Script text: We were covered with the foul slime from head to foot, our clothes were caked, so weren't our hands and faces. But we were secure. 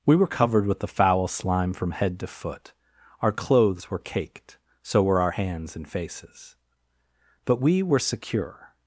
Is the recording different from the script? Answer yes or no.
yes